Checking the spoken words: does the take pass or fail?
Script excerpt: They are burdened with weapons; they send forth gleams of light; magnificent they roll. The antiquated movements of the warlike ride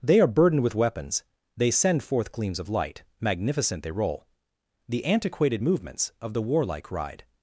pass